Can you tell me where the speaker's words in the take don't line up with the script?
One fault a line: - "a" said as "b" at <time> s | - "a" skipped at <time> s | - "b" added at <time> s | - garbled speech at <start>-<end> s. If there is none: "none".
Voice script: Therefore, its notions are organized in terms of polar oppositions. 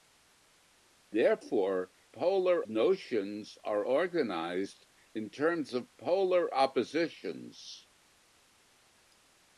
- "its" said as "polar" at 2.1 s